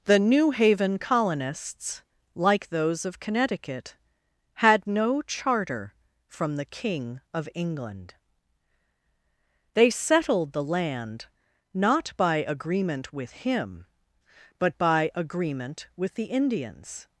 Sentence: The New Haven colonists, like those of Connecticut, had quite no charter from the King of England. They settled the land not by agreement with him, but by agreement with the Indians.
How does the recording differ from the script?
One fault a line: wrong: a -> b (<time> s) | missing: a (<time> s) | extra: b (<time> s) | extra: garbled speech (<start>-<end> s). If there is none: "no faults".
missing: quite (4.9 s)